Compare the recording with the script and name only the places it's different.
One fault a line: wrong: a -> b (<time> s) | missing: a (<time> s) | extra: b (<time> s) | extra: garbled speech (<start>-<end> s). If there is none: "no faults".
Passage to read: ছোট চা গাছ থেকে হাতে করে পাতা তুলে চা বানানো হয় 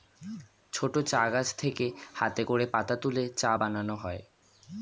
no faults